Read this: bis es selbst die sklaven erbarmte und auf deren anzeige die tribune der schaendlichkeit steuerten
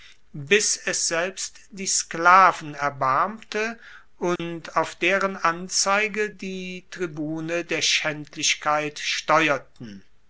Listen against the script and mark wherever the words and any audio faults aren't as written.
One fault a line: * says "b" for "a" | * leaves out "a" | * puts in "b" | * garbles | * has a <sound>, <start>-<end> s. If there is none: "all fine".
* has a dropout, 4.4-4.4 s